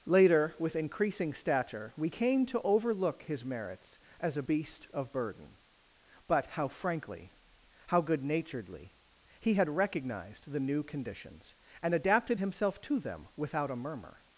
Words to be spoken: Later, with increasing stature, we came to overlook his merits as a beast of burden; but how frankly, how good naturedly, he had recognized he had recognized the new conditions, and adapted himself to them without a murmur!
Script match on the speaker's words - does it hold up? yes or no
no